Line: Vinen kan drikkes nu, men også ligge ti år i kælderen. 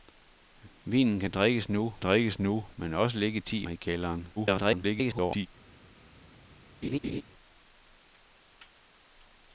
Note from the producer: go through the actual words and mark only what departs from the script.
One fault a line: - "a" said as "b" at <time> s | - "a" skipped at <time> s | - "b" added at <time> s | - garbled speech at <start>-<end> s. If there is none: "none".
- "drikkes nu" added at 2.0 s
- "år" skipped at 3.7 s
- garbled speech at 4.4-5.5 s